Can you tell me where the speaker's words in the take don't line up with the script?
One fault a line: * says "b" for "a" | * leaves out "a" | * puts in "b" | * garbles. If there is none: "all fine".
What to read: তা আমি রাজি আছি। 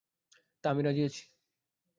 all fine